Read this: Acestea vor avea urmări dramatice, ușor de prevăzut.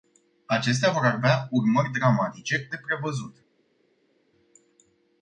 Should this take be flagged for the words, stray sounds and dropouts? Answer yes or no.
yes